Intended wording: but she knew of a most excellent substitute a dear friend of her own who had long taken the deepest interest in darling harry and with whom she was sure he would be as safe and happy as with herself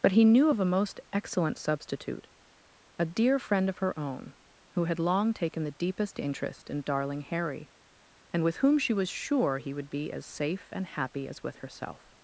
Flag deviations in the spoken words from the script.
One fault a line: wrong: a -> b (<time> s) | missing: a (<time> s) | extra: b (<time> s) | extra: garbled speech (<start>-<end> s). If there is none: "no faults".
wrong: she -> he (0.1 s)